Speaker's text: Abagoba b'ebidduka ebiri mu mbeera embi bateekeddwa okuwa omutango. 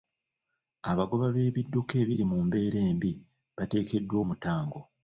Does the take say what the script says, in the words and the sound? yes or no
no